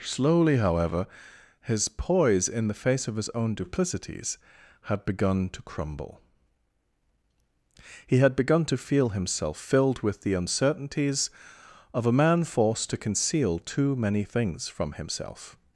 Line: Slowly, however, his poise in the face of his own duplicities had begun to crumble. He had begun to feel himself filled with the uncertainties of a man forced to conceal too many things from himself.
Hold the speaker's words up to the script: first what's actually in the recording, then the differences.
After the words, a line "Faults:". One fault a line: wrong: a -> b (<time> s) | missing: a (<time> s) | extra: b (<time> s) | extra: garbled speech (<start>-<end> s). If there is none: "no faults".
Slowly, however, his poise in the face of his own duplicities had begun to crumble. He had begun to feel himself filled with the uncertainties of a man forced to conceal too many things from himself.
Faults:
no faults